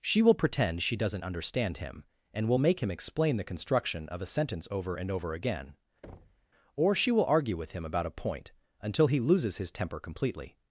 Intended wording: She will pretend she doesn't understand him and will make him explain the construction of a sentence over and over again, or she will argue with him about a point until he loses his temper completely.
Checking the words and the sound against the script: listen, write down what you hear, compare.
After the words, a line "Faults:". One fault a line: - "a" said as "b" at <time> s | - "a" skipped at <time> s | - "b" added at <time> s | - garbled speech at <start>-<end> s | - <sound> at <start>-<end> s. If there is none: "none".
She will pretend she doesn't understand him and will make him explain the construction of a sentence over and over again, or she will argue with him about a point until he loses his temper completely.
Faults:
- thud at 6.0-6.5 s